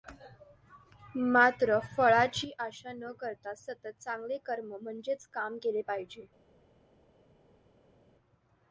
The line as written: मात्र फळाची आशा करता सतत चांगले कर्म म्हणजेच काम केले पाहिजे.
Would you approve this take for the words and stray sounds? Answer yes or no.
no